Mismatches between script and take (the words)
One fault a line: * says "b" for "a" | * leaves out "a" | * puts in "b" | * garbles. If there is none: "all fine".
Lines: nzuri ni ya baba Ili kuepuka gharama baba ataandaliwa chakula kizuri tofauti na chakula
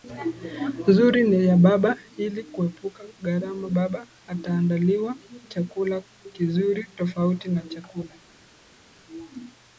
all fine